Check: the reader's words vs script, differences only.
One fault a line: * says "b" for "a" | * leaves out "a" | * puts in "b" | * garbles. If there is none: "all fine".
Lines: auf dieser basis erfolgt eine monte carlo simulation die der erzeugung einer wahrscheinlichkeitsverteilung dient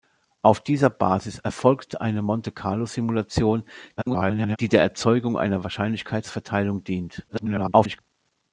* garbles
* garbles